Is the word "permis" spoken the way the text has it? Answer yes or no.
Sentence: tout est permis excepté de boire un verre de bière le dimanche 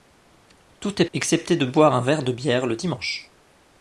no